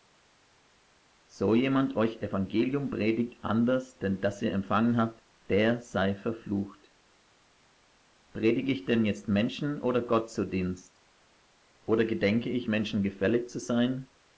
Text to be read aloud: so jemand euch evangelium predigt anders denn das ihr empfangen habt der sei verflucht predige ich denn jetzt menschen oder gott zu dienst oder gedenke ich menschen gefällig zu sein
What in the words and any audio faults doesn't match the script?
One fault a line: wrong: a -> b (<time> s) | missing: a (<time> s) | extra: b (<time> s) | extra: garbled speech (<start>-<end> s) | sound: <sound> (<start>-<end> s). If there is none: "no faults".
no faults